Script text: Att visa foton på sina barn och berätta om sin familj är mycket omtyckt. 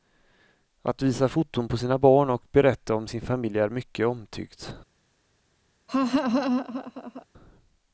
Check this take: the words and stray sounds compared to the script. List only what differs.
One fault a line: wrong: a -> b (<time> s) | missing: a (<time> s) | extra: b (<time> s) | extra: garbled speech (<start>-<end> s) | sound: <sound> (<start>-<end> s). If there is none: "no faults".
sound: laugh (5.9-7.3 s)